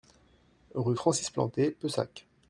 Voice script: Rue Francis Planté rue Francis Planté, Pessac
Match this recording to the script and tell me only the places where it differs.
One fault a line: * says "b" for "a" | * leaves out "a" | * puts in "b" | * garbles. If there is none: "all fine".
* leaves out "rue Francis Planté"